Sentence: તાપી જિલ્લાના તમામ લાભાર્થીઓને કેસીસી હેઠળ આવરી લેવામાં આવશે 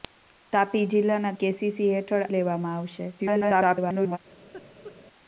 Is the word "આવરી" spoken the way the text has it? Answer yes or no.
no